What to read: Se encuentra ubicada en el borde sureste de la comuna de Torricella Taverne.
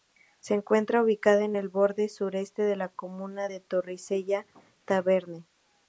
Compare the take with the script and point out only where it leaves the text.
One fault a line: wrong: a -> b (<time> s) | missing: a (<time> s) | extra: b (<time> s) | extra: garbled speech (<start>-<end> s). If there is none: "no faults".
no faults